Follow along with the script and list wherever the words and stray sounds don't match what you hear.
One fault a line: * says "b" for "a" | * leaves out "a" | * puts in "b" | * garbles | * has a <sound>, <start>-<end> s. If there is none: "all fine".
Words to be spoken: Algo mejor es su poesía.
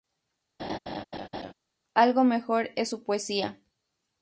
* has a laugh, 0.6-1.5 s